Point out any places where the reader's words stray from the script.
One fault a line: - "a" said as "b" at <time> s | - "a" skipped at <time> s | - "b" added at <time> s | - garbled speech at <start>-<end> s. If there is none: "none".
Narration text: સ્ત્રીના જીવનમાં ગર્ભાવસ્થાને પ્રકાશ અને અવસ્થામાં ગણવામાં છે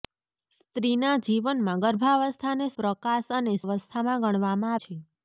none